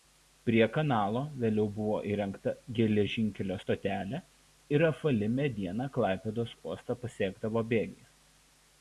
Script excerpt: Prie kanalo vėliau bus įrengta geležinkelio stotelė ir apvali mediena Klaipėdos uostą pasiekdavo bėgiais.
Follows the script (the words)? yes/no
no